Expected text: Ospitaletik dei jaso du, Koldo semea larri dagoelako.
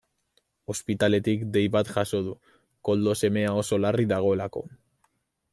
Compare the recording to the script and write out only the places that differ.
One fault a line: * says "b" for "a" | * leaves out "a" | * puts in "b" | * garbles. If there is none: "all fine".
* puts in "bat"
* puts in "oso"